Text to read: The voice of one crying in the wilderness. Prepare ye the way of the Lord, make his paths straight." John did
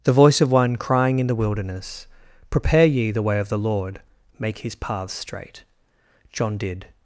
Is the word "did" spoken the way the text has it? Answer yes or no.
yes